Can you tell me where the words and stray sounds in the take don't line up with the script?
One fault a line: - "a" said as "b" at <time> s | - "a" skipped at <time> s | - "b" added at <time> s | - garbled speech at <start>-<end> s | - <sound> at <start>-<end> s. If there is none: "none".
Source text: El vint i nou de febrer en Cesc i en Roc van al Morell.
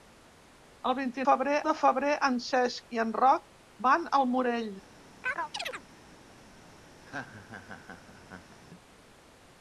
- "nou" said as "febrer" at 1.3 s
- chirp at 5.2-5.8 s
- laugh at 7.0-8.6 s